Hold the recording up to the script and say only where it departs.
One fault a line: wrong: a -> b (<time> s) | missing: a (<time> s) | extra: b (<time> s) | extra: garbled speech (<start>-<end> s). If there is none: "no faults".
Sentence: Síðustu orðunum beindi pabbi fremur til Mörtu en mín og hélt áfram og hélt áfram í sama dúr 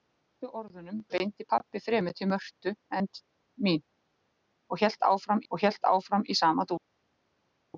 no faults